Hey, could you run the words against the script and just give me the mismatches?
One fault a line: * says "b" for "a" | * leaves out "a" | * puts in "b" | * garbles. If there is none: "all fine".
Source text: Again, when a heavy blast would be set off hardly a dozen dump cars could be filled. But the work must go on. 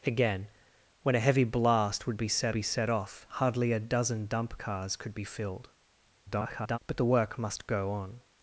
* puts in "be set"
* garbles